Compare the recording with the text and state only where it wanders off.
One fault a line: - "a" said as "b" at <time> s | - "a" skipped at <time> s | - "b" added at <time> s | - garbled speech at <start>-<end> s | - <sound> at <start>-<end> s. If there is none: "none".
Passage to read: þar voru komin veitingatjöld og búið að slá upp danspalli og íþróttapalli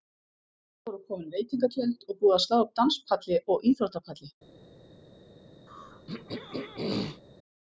- throat clearing at 5.7-7.2 s